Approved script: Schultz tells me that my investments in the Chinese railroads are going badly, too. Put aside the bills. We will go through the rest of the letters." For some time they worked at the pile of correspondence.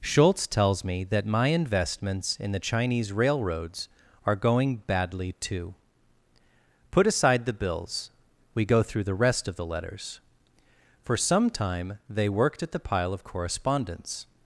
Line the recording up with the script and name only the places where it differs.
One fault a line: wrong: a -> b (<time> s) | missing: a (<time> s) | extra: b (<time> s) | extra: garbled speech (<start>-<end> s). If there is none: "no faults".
missing: will (8.7 s)